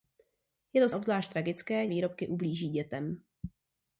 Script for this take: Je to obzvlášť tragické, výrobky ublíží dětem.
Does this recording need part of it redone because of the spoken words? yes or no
no